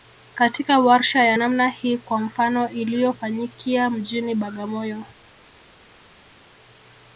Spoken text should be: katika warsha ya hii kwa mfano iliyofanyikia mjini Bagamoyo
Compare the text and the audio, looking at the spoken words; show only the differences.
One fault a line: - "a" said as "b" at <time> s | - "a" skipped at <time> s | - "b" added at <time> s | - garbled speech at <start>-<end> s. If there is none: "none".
- "namna" added at 1.3 s